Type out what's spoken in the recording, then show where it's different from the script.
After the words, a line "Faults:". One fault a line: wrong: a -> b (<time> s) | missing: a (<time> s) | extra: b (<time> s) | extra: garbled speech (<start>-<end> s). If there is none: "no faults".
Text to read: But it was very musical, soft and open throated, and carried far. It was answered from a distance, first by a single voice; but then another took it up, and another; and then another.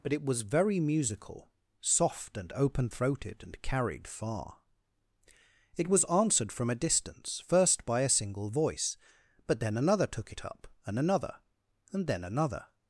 But it was very musical, soft and open throated, and carried far. It was answered from a distance, first by a single voice; but then another took it up, and another; and then another.
Faults:
no faults